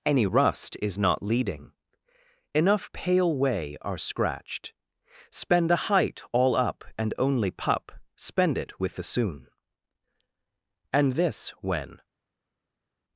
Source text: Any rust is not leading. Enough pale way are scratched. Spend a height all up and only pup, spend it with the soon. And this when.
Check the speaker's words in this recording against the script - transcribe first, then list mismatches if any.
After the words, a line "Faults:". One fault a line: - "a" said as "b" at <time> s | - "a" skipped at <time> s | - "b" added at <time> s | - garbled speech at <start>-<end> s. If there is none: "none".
Any rust is not leading. Enough pale way are scratched. Spend a height all up and only pup, spend it with the soon. And this when.
Faults:
none